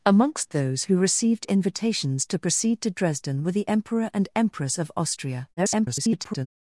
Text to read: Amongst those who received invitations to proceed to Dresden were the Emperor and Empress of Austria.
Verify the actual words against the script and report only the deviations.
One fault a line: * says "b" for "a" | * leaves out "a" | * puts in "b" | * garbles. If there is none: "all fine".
* garbles